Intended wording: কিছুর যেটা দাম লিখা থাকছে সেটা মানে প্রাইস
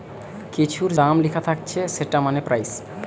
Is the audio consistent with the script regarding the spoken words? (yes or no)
no